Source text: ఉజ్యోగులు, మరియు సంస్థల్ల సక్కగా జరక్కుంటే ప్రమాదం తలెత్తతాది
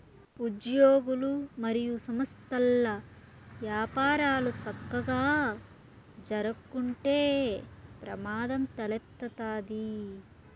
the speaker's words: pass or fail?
fail